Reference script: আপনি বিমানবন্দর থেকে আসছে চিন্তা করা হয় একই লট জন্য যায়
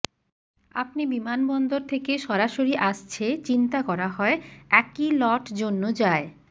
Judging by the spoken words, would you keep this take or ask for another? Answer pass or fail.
fail